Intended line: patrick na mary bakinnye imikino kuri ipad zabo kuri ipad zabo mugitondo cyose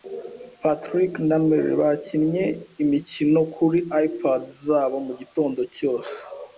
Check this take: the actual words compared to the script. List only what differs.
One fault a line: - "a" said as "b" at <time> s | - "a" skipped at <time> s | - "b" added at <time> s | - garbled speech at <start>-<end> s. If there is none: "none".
- "kuri ipad zabo" skipped at 5.0 s